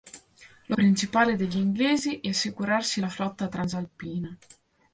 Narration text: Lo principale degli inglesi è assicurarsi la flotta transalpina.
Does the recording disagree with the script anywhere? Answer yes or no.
no